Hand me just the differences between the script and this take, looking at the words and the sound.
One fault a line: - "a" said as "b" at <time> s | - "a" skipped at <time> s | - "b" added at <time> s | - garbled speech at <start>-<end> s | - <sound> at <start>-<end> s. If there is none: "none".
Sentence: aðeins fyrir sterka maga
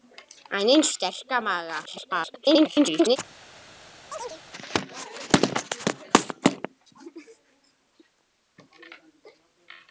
- "fyrir" skipped at 0.9 s
- garbled speech at 1.9-3.2 s
- chirp at 4.1-4.4 s